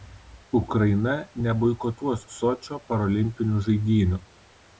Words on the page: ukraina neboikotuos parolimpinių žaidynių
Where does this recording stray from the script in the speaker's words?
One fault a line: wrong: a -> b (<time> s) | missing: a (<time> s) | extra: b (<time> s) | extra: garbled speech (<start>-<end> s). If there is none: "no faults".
extra: sočio (2.3 s)